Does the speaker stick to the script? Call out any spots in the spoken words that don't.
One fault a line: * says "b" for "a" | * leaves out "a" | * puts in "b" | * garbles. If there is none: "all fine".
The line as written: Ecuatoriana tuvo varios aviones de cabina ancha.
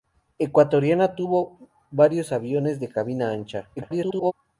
* garbles